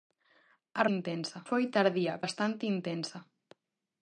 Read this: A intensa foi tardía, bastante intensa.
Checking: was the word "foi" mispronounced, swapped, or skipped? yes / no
no